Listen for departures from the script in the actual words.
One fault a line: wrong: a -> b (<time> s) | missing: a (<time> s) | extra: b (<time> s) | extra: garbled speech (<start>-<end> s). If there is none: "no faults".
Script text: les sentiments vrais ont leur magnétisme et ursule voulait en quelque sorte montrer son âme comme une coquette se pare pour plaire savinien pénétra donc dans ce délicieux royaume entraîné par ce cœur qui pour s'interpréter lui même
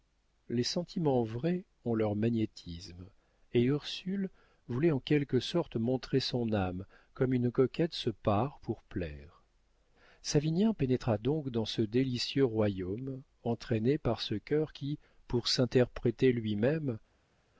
no faults